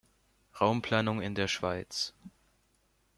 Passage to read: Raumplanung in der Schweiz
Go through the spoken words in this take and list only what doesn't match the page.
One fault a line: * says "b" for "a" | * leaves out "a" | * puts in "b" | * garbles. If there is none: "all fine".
all fine